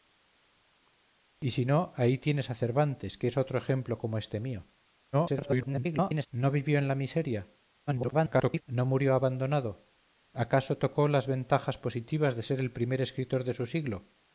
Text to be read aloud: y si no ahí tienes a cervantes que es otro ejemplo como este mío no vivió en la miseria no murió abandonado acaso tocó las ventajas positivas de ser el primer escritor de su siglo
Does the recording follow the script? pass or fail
fail